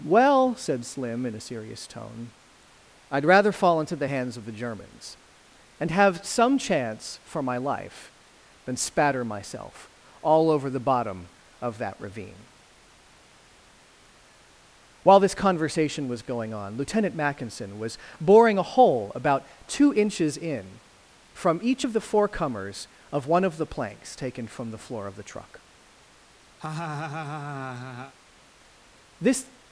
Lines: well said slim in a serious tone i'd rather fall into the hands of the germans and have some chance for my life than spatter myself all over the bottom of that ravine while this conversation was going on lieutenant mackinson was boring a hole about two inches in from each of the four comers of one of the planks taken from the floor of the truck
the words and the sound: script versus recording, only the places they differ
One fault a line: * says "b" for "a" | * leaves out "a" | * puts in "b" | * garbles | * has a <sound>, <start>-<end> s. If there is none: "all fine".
* has a laugh, 26.6-28.1 s
* puts in "this"